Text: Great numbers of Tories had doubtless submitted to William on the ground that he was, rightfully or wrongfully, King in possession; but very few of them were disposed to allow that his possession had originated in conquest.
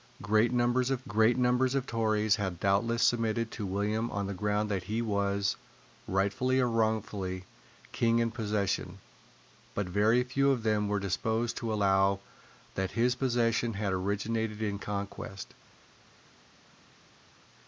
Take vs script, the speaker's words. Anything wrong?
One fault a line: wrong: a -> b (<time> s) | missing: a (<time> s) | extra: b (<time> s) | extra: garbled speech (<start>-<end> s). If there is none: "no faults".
extra: great numbers of (1.1 s)